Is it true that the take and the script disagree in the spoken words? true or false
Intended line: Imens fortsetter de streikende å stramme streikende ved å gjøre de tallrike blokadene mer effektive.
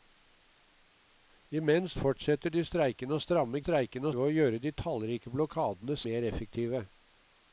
false